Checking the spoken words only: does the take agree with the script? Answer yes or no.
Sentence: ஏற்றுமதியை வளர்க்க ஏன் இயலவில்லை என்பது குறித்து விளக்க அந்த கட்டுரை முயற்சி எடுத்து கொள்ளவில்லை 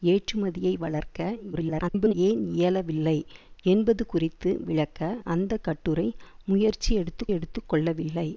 no